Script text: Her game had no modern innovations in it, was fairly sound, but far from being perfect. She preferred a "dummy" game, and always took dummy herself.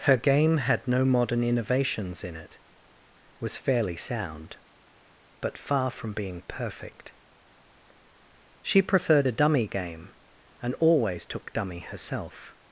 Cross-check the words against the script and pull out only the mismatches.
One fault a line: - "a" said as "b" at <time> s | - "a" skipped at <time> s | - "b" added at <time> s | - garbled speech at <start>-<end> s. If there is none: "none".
none